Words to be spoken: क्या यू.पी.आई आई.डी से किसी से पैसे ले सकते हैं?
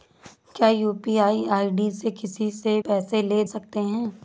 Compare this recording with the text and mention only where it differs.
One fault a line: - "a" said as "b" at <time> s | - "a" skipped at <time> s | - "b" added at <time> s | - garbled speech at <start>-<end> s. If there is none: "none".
none